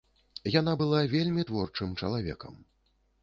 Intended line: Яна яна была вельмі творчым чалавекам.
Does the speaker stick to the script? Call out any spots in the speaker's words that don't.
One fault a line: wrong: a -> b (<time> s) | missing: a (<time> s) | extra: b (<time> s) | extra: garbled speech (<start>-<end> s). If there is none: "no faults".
missing: яна (0.7 s)